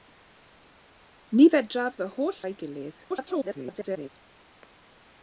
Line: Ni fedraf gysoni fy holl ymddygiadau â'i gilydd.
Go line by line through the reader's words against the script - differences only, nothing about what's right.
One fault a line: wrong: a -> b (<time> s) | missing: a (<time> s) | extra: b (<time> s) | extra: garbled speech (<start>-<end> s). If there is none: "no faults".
missing: gysoni (2.0 s)
missing: ymddygiadau (2.4 s)
extra: garbled speech (3.1-4.1 s)